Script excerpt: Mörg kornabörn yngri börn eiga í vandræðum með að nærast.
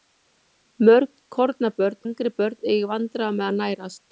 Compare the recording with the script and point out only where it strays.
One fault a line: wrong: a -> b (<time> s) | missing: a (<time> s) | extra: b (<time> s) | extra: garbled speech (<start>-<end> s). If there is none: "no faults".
no faults